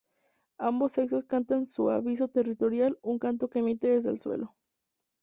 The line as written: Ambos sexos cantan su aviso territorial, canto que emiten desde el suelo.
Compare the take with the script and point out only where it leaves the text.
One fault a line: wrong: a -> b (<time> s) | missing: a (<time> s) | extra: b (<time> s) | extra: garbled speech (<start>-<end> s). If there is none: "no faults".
extra: un (3.0 s)